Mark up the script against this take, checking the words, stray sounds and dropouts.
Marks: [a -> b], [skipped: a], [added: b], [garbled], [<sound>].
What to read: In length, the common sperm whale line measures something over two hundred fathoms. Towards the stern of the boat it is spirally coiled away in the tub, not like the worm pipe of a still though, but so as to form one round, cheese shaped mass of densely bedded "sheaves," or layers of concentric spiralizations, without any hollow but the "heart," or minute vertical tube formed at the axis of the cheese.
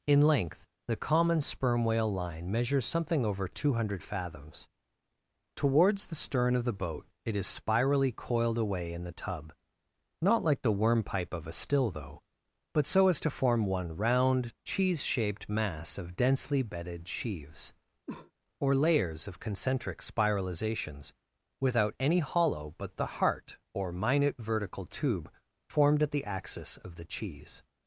In length, the common sperm whale line measures something over two hundred fathoms. Towards the stern of the boat it is spirally coiled away in the tub, not like the worm pipe of a still though, but so as to form one round, cheese shaped mass of densely bedded "sheaves," [cough] or layers of concentric spiralizations, without any hollow but the "heart," or minute vertical tube formed at the axis of the cheese.